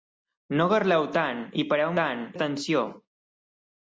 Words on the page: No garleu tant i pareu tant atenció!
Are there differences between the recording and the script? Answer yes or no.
no